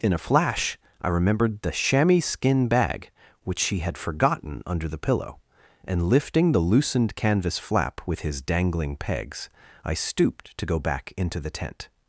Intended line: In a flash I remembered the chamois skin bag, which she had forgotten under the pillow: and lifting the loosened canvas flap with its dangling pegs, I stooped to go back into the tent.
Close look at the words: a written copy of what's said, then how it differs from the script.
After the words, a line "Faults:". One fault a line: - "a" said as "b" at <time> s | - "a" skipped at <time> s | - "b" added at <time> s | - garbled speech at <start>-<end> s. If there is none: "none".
In a flash I remembered the chamois skin bag, which she had forgotten under the pillow: and lifting the loosened canvas flap with his dangling pegs, I stooped to go back into the tent.
Faults:
- "its" said as "his" at 8.2 s